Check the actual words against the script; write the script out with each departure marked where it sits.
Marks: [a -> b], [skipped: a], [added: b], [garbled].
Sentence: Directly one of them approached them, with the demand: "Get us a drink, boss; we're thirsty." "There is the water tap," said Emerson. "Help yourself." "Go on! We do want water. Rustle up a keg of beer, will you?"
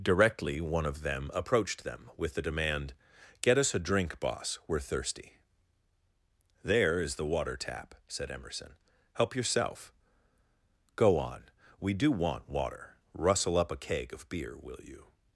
Directly one of them approached them, with the demand: "Get us a drink, boss; we're thirsty." "There is the water tap," said Emerson. "Help yourself." "Go on! We do want water. Rustle up a keg of beer, will you?"